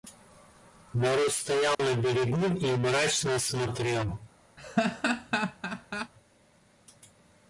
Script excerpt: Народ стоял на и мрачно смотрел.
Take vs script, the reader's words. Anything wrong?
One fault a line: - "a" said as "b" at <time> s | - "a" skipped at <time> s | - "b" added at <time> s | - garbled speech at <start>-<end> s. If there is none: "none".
- "берегу" added at 1.9 s